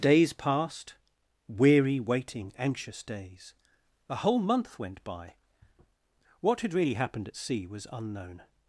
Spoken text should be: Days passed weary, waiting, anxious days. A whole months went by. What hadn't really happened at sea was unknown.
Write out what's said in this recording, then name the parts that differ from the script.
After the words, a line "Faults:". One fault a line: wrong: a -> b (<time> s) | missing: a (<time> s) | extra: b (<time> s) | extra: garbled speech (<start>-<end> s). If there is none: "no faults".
Days passed weary, waiting, anxious days. A whole month went by. What had really happened at sea was unknown.
Faults:
wrong: months -> month (4.4 s)
wrong: hadn't -> had (6.6 s)